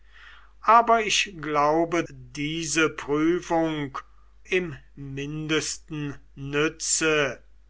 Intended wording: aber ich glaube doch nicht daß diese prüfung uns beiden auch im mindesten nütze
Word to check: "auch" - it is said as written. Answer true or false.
false